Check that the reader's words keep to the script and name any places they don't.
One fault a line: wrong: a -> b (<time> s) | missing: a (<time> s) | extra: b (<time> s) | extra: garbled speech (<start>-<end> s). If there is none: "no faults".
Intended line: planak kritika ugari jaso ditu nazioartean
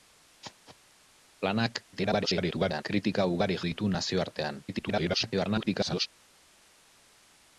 extra: garbled speech (1.9-2.8 s)
missing: jaso (3.6 s)
extra: garbled speech (4.7-6.1 s)